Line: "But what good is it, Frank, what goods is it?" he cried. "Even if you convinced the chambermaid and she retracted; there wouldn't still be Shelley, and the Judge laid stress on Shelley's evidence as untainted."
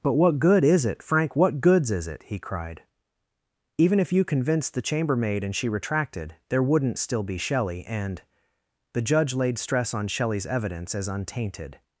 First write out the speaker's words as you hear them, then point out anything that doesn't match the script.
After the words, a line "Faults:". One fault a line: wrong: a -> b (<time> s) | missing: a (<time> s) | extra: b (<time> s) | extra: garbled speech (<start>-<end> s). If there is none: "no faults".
"But what good is it, Frank, what goods is it?" he cried. "Even if you convinced the chambermaid and she retracted; there wouldn't still be Shelley, and the Judge laid stress on Shelley's evidence as untainted."
Faults:
no faults